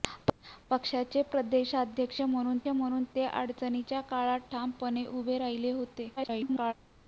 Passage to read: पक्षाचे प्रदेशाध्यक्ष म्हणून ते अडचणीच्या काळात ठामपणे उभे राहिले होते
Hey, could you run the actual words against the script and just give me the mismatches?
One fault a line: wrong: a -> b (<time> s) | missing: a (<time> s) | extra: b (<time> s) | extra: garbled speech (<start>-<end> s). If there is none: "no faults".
extra: म्हणून (2.7 s)
extra: garbled speech (6.2-6.7 s)